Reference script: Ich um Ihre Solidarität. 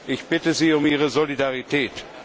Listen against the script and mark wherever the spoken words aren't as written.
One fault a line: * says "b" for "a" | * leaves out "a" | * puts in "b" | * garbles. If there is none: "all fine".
* puts in "bitte Sie"